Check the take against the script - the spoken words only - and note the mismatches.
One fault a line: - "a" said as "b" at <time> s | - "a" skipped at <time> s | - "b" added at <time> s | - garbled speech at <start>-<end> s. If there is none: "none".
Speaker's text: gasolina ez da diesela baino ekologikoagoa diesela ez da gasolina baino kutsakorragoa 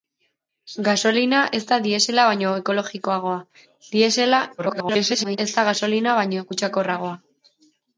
- garbled speech at 4.6-5.4 s